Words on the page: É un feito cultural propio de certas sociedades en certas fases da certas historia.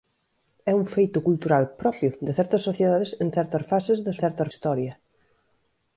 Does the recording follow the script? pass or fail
pass